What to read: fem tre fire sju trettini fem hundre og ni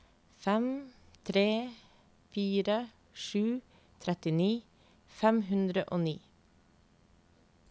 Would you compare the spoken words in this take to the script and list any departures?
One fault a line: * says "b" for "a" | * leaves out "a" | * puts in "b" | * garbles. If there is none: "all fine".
all fine